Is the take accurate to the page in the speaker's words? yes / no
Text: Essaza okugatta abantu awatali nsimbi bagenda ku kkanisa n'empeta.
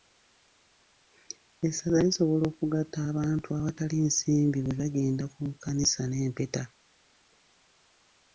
no